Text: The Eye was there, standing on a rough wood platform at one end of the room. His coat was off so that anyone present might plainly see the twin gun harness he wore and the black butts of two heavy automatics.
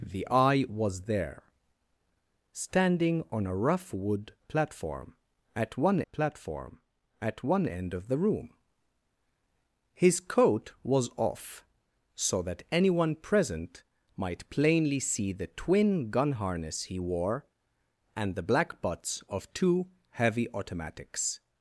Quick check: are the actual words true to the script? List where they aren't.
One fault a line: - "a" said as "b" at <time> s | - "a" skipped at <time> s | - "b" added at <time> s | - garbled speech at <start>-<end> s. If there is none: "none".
- "platform at one" added at 6.1 s